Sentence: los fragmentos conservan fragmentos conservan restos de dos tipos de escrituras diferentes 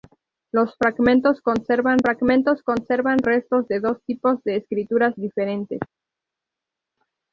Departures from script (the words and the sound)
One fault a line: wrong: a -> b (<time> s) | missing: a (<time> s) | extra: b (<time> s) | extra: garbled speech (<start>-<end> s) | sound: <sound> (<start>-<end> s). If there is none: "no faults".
no faults